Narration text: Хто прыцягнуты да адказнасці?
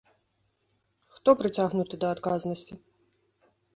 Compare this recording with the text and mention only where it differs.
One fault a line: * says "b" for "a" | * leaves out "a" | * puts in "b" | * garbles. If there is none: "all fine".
all fine